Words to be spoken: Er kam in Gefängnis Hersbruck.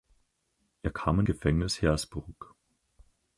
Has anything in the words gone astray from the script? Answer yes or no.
no